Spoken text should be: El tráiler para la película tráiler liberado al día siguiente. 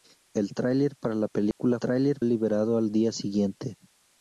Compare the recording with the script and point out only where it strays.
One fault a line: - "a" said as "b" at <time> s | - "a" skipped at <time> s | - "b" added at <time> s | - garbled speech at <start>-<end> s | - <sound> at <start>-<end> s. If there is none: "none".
- dropout at 1.5-1.6 s